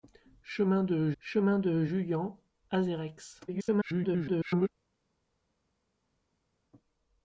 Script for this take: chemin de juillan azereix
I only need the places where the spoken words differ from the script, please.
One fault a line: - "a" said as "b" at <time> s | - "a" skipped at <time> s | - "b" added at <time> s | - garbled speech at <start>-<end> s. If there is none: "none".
- "chemin de" added at 1.2 s
- garbled speech at 3.5-4.7 s